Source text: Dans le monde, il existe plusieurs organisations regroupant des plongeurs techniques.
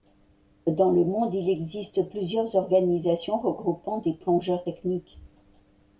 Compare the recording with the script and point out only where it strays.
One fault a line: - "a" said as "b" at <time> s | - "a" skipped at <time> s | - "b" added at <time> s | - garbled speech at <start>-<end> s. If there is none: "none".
none